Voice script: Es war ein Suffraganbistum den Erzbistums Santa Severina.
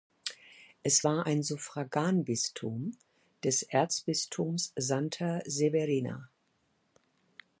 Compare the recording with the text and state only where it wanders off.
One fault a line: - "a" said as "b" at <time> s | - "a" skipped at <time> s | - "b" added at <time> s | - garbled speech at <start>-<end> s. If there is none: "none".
- "den" said as "des" at 3.4 s